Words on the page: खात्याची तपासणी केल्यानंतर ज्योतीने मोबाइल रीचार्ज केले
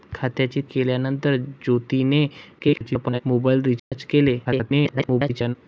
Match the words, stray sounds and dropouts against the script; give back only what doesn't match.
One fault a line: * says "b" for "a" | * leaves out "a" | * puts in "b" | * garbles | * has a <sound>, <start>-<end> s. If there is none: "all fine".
* leaves out "तपासणी"
* garbles
* has a dropout, 3.8-3.9 s
* garbles